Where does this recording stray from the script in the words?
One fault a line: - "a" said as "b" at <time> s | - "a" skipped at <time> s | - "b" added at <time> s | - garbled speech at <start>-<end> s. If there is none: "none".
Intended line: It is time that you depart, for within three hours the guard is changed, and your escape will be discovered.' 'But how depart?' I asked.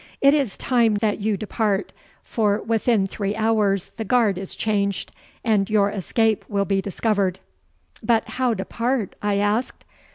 none